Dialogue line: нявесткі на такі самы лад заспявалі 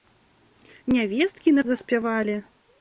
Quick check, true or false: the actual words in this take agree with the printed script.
false